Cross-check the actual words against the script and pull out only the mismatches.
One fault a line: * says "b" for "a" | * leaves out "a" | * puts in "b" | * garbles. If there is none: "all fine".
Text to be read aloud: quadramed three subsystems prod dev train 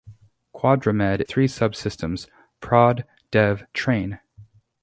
all fine